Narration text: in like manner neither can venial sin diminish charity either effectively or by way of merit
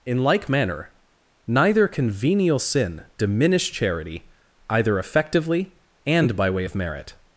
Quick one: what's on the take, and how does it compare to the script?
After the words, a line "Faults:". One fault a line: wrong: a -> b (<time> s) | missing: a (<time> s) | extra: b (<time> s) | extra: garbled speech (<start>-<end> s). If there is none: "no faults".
in like manner neither can venial sin diminish charity either effectively and by way of merit
Faults:
wrong: or -> and (6.0 s)